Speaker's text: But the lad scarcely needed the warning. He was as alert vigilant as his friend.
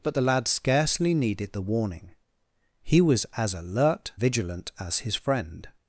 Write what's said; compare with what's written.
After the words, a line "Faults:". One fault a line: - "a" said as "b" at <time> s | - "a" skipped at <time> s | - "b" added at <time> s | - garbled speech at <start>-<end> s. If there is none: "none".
But the lad scarcely needed the warning. He was as alert vigilant as his friend.
Faults:
none